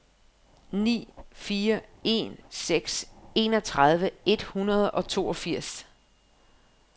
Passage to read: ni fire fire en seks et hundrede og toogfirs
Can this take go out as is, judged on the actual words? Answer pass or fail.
fail